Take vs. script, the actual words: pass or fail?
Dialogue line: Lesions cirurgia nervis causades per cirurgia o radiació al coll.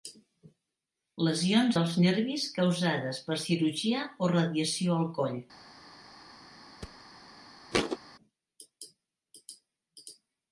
fail